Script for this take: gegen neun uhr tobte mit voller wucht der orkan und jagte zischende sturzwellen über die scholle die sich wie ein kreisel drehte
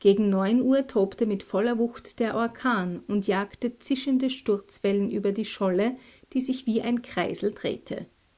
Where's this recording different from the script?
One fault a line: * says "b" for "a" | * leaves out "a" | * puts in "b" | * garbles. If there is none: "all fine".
all fine